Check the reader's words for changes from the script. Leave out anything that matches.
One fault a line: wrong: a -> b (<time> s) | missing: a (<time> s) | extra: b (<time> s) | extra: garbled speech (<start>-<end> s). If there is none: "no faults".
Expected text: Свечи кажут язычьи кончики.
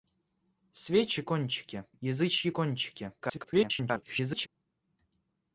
wrong: кажут -> кончики (1.2 s)
extra: garbled speech (3.2-4.5 s)